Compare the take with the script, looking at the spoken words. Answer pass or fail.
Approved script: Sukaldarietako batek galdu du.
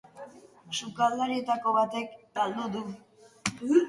pass